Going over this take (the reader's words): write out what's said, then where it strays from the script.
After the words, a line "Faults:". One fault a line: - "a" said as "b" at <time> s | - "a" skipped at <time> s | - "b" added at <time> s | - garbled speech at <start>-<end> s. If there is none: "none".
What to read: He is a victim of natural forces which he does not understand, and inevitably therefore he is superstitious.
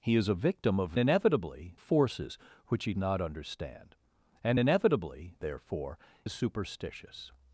He is a victim of inevitably forces which he not understand, and inevitably therefore is superstitious.
Faults:
- "natural" said as "inevitably" at 1.0 s
- "does" skipped at 2.9 s
- "he" skipped at 6.0 s